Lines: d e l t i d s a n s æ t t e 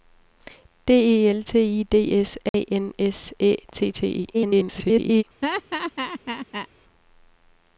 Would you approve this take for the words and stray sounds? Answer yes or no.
no